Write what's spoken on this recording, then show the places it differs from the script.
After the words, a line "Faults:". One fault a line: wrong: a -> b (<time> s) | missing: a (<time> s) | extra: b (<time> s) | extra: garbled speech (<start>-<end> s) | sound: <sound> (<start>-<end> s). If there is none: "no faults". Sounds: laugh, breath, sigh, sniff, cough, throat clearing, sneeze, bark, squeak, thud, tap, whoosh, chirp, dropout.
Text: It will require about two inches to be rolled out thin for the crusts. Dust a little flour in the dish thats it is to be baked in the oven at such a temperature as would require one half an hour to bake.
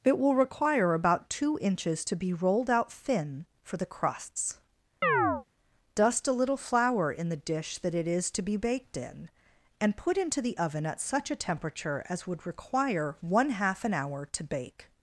It will require about two inches to be rolled out thin for the crusts. Dust a little flour in the dish that it is to be baked in and put into the oven at such a temperature as would require one half an hour to bake.
Faults:
sound: chirp (5.0-5.4 s)
wrong: thats -> that (7.8 s)
extra: and put into (9.8 s)